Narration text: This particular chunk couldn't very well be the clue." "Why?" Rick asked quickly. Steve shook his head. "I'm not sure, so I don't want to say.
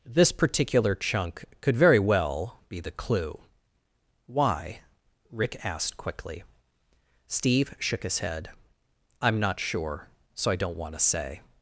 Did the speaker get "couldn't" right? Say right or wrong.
wrong